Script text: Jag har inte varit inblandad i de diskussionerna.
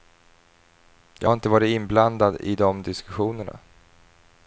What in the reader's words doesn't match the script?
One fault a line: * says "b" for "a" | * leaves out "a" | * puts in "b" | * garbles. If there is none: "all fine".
all fine